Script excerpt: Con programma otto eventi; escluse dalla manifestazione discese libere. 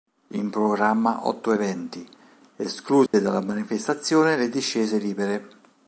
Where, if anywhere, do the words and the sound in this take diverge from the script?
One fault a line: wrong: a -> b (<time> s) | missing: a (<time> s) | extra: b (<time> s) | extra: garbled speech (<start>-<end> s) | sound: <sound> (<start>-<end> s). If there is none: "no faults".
wrong: Con -> In (0.3 s)
sound: dropout (3.1-3.1 s)
extra: le (4.4 s)